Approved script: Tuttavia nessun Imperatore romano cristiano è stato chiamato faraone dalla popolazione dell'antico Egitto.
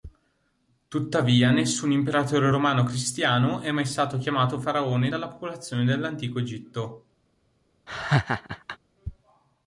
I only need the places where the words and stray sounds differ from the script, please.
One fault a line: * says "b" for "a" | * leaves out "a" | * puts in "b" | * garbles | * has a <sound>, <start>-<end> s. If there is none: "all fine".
* puts in "mai"
* has a laugh, 7.9-8.8 s